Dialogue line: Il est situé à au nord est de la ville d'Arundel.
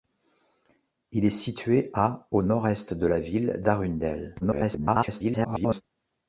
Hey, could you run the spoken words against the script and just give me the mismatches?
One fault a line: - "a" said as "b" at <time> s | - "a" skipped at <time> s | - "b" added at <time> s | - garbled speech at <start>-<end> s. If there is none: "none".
- garbled speech at 4.4-5.8 s